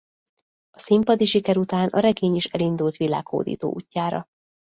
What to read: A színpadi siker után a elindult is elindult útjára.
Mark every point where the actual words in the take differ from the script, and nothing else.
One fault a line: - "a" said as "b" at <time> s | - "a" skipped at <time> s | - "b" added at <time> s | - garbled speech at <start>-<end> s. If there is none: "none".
- "elindult" said as "regény" at 2.0 s
- "világhódító" added at 3.0 s